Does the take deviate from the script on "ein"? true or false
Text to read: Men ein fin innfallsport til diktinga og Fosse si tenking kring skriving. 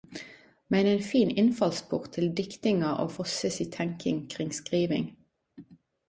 false